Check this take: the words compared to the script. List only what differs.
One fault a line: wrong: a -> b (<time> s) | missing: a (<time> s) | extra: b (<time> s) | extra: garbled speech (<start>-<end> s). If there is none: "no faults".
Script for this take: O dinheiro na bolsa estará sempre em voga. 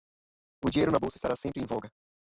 no faults